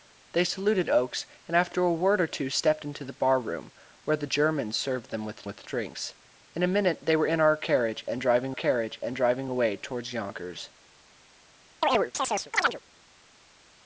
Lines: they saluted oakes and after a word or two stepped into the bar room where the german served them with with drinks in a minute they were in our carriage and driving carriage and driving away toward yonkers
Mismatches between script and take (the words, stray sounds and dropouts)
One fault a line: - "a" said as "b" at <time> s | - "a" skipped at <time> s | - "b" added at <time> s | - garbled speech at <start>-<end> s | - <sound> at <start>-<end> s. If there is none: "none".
- chirp at 11.8-12.8 s